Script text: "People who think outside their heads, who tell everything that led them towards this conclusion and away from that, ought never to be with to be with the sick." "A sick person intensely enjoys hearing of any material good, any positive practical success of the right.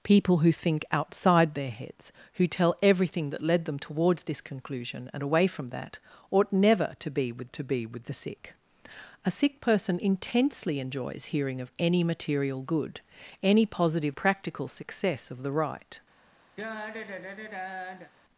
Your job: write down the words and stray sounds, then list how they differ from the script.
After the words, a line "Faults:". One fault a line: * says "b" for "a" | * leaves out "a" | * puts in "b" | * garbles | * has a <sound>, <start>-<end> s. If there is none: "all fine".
"People who think outside their heads, who tell everything that led them towards this conclusion and away from that, ought never to be with to be with the sick." "A sick person intensely enjoys hearing of any material good, any positive practical success of the right.
Faults:
* has a sigh, 16.6-18.1 s